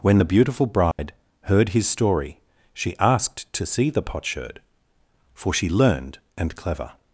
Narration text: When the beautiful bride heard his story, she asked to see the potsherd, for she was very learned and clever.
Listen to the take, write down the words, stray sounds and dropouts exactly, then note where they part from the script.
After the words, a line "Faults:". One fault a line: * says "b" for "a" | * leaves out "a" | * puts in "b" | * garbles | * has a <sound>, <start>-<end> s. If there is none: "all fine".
When the beautiful bride heard his story, she asked to see the potsherd, for she learned and clever.
Faults:
* has a dropout, 0.9-1.0 s
* leaves out "was very"